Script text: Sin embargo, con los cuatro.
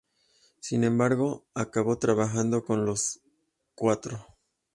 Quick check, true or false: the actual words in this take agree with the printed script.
false